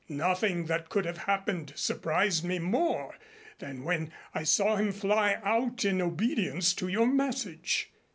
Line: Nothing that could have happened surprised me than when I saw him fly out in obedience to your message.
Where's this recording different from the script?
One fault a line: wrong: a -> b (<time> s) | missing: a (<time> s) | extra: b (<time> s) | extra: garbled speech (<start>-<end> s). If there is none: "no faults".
extra: more (2.6 s)